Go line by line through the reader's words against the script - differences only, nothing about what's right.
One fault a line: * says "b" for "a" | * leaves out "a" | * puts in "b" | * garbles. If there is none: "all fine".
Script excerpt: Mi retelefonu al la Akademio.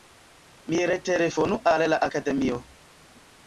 all fine